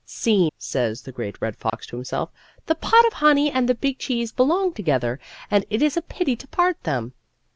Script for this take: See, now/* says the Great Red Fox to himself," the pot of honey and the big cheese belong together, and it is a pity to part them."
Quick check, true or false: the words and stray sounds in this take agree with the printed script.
false